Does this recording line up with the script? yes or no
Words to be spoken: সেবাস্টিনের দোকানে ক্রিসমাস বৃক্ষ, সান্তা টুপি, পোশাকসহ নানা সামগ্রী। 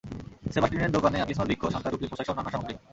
yes